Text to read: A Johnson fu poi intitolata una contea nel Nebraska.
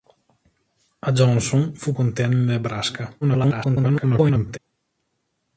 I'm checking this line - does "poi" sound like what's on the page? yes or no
no